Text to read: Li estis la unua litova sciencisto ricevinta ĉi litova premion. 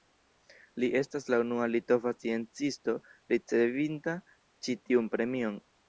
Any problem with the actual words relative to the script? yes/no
yes